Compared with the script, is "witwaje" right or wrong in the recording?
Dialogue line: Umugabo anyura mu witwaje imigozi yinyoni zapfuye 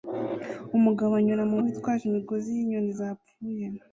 right